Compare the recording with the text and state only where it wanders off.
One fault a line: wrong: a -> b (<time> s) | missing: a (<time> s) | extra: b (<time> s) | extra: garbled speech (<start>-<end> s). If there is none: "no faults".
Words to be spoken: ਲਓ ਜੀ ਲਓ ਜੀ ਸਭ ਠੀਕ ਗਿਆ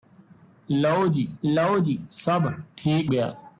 no faults